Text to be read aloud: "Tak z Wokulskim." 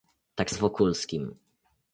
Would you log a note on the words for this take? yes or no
no